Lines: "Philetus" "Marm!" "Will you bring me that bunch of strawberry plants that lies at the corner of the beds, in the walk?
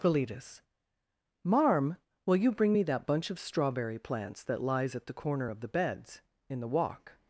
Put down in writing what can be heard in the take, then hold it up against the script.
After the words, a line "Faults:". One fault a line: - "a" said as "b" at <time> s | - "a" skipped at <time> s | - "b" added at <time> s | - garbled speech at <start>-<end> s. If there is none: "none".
"Philetus" "Marm!" "Will you bring me that bunch of strawberry plants that lies at the corner of the beds, in the walk?
Faults:
none